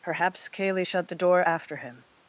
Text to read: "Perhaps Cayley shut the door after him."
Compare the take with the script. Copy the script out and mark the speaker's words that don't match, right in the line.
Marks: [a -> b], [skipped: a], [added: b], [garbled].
"Perhaps Cayley shut the door after him."